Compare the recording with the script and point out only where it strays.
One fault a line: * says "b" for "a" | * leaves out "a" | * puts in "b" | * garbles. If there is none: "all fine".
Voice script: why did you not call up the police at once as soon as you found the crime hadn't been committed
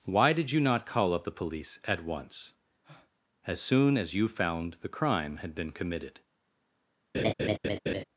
* says "had" for "hadn't"